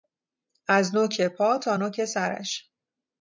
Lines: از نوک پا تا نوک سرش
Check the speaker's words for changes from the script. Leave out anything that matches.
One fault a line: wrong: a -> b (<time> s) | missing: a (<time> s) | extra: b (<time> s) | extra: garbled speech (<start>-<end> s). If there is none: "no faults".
no faults